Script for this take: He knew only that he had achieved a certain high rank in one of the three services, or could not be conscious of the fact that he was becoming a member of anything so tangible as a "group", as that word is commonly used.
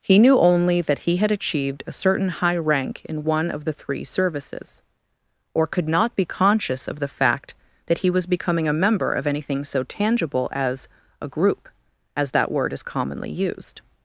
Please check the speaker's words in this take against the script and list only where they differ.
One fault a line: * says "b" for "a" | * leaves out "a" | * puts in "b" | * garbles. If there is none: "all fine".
all fine